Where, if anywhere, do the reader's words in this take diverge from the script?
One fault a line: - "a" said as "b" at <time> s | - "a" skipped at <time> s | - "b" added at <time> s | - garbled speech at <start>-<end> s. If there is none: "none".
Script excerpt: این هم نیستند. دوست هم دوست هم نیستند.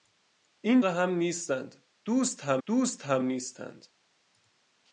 none